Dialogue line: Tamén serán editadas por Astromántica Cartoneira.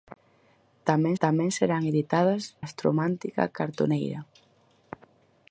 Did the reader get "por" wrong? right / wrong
wrong